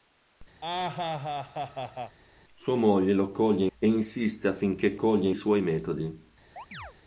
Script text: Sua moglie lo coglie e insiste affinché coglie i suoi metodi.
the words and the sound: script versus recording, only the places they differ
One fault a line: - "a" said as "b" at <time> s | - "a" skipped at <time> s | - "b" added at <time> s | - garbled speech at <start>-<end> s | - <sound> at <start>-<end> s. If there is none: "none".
- laugh at 0.6-2.2 s
- chirp at 6.6-6.9 s